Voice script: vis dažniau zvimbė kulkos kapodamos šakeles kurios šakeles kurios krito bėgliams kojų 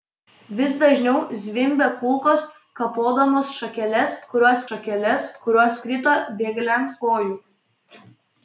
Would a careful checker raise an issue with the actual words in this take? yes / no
no